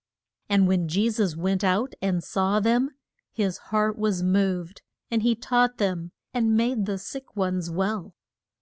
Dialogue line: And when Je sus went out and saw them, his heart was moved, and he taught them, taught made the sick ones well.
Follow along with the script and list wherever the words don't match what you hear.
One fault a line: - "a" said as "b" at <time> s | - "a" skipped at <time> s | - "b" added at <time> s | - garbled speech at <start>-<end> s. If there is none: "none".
- "taught" said as "and" at 6.3 s